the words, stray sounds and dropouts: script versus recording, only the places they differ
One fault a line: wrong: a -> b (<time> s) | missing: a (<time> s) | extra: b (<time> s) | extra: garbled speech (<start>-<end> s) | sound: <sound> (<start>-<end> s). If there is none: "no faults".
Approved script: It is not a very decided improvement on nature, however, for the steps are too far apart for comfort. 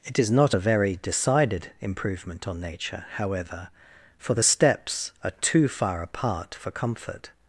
no faults